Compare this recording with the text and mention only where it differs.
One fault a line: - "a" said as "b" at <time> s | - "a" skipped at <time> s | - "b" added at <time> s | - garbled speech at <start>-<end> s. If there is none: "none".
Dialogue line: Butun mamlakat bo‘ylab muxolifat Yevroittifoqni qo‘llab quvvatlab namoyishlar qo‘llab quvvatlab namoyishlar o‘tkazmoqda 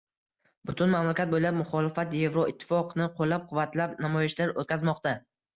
- "qo‘llab quvvatlab namoyishlar" skipped at 4.6 s